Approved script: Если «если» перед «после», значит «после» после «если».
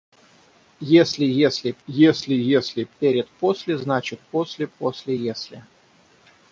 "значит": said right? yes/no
yes